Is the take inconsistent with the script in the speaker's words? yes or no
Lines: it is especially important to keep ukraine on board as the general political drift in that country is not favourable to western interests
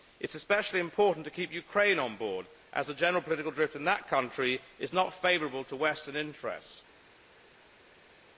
no